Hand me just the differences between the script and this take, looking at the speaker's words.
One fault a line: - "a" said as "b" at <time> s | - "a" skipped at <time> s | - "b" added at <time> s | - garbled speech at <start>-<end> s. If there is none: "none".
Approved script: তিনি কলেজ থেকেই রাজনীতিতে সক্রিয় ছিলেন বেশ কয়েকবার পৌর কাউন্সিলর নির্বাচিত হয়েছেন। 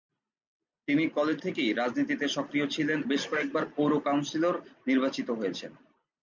none